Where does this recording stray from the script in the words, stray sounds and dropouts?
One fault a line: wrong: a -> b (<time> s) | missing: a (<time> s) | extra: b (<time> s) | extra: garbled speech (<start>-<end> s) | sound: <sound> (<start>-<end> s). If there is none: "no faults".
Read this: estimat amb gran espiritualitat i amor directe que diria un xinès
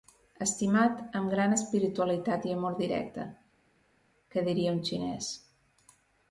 no faults